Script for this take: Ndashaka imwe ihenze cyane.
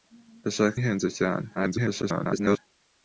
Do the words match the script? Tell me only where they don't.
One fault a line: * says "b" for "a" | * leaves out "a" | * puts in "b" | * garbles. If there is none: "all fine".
* leaves out "imwe"
* garbles